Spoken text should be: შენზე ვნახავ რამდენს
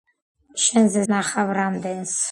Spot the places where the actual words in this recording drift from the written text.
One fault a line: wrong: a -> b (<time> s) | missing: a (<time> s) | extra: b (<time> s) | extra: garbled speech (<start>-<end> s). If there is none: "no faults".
no faults